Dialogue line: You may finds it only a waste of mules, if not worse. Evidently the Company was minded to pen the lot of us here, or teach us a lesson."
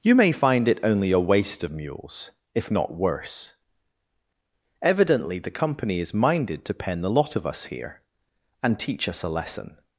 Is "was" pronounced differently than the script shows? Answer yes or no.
yes